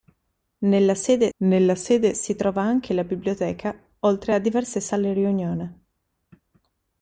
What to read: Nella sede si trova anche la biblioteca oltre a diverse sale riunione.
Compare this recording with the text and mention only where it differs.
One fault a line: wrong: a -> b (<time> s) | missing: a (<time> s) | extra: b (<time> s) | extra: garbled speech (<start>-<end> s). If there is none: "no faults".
extra: nella sede (1.4 s)